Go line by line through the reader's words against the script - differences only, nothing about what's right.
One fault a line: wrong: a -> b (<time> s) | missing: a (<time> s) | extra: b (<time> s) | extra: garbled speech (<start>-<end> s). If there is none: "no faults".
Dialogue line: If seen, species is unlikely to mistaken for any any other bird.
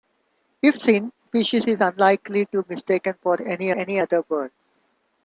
no faults